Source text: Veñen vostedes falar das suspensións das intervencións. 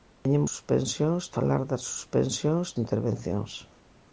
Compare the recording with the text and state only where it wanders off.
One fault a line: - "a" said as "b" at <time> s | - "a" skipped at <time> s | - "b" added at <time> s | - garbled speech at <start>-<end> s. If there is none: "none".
- "vostedes" said as "suspensións" at 0.5 s
- "das" skipped at 2.7 s